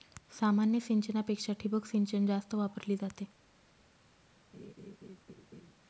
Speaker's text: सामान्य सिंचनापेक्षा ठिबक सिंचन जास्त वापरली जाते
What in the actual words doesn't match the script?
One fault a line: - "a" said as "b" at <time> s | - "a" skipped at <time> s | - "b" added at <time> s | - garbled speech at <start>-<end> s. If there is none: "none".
none